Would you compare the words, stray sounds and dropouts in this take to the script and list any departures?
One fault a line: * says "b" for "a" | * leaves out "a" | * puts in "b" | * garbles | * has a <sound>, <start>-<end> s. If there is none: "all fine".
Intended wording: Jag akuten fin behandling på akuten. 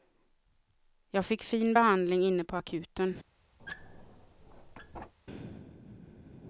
* says "fick" for "akuten"
* puts in "inne"
* has a squeak, 3.6-5.1 s